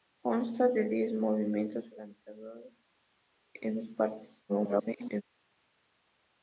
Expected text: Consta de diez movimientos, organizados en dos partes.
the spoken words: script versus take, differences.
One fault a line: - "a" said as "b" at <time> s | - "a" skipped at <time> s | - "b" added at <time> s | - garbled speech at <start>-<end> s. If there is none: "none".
- garbled speech at 4.5-5.2 s